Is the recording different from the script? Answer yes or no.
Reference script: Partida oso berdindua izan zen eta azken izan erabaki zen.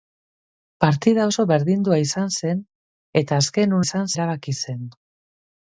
no